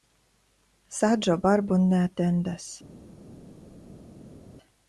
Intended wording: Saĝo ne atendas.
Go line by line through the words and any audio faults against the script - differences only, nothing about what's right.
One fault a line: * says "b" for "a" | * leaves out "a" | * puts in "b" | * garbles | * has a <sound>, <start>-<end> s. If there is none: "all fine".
* puts in "barbon"